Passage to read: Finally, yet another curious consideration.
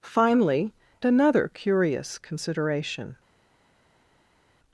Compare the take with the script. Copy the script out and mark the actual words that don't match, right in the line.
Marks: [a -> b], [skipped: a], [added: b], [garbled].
Finally, [skipped: yet] another curious consideration.